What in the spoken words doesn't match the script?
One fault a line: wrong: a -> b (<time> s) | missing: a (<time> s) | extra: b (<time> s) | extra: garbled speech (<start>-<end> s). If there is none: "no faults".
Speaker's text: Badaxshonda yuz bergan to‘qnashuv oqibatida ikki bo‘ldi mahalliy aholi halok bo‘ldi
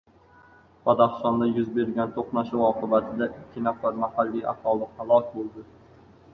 wrong: bo‘ldi -> nafar (3.7 s)